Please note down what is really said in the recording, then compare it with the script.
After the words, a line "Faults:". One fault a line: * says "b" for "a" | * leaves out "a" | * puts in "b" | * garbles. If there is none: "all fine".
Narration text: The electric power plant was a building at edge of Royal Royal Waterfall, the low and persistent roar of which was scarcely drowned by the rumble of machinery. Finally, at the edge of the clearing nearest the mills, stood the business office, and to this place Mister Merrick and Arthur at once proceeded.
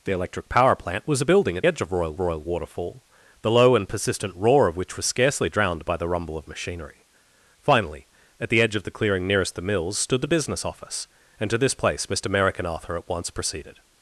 The electric power plant was a building at edge of Royal Royal Waterfall, the low and persistent roar of which was scarcely drowned by the rumble of machinery. Finally, at the edge of the clearing nearest the mills, stood the business office, and to this place Mister Merrick and Arthur at once proceeded.
Faults:
all fine